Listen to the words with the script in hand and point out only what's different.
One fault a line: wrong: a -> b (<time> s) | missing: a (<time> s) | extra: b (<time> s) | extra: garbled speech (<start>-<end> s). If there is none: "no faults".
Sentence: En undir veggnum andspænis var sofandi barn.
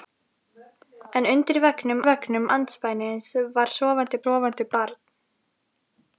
extra: veggnum (2.1 s)
extra: sofandi (4.2 s)